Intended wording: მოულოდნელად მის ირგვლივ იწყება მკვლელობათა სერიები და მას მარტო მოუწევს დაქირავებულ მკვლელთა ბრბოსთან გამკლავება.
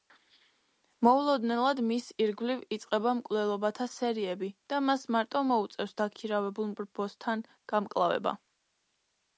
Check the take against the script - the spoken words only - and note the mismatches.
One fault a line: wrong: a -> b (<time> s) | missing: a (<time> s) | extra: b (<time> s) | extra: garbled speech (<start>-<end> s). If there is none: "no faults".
missing: მკვლელთა (6.7 s)